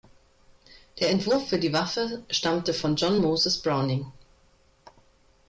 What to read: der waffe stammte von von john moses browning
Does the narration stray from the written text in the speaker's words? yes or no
yes